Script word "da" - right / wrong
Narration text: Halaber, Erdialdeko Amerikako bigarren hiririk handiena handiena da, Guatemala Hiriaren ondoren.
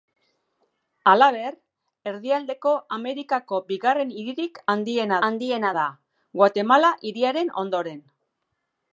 right